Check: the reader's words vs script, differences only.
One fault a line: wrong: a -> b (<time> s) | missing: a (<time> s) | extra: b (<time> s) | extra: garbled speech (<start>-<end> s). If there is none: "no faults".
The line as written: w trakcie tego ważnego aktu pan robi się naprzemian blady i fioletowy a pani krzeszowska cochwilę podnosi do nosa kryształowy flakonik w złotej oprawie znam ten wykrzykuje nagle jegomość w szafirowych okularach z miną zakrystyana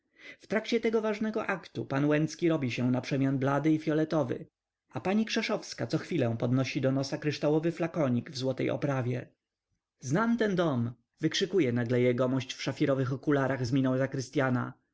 extra: łęcki (2.0 s)
extra: dom (10.6 s)